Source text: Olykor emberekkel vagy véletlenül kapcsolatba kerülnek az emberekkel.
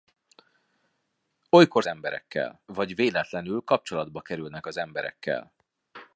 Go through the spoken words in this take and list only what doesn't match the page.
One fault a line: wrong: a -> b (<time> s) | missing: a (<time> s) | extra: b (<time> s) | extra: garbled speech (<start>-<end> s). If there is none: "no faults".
no faults